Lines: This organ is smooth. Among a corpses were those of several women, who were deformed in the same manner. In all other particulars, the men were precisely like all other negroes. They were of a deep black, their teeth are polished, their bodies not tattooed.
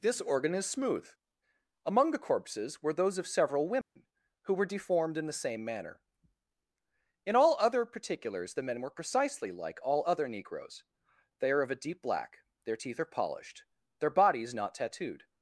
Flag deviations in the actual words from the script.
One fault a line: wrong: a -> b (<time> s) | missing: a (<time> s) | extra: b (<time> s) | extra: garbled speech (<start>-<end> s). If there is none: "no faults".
wrong: a -> the (2.1 s)
wrong: were -> are (11.5 s)